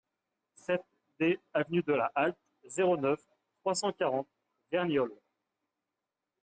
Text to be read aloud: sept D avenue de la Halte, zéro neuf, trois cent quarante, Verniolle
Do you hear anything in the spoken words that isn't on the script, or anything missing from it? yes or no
no